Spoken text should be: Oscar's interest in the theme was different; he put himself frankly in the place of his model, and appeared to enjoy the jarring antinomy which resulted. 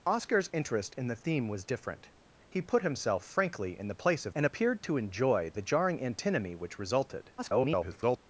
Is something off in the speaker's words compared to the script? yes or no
yes